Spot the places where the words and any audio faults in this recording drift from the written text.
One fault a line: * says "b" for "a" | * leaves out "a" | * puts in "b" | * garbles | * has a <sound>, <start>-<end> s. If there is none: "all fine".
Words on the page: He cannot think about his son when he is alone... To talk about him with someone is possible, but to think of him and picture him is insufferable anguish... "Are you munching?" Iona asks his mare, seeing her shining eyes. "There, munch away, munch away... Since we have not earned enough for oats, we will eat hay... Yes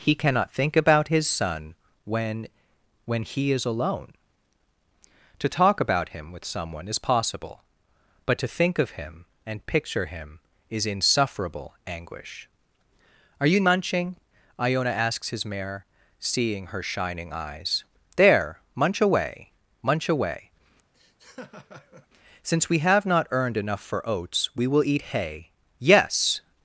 * puts in "when"
* has a laugh, 20.9-22.1 s